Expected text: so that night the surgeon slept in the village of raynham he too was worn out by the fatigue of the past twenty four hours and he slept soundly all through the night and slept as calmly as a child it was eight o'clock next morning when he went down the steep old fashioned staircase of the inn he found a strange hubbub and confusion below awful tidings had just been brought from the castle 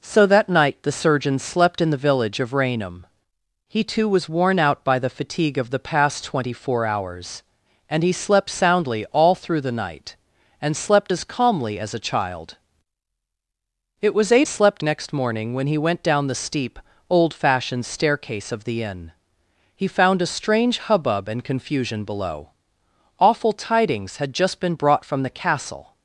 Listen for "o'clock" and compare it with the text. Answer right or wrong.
wrong